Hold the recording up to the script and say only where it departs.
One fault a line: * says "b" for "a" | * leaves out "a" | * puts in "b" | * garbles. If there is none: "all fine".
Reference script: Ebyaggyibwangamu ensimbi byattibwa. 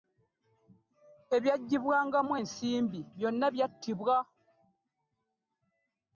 * puts in "byonna"